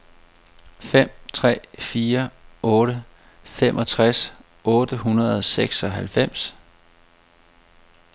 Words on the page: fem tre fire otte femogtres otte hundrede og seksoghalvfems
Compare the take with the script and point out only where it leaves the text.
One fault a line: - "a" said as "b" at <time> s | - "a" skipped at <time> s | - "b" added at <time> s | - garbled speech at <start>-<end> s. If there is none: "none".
none